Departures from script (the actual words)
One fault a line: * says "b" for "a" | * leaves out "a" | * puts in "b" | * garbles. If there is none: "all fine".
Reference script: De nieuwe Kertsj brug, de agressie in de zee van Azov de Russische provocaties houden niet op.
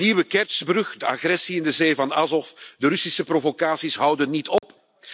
all fine